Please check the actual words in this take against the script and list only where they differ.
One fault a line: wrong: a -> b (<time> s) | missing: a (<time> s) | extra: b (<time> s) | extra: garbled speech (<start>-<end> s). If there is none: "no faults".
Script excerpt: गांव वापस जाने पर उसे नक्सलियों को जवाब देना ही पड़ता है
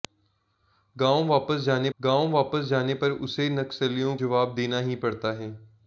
extra: गांव वापस जाने (2.0 s)
missing: को (4.2 s)